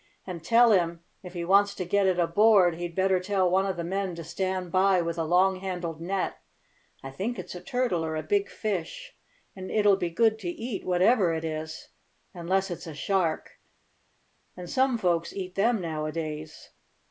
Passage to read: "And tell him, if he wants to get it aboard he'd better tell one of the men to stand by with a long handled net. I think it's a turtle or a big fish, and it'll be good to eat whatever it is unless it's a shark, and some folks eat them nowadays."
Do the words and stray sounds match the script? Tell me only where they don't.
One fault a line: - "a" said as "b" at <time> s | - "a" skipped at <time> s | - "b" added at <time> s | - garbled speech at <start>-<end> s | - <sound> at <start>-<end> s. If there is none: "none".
none